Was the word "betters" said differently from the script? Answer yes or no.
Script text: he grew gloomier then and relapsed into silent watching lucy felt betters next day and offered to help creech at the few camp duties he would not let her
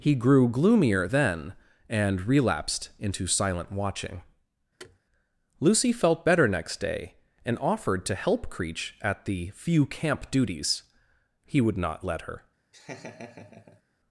yes